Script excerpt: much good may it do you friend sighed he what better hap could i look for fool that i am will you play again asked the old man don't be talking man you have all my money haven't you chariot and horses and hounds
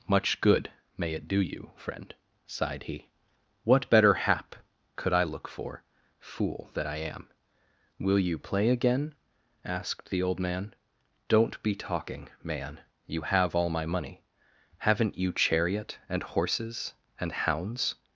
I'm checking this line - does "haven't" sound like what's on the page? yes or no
yes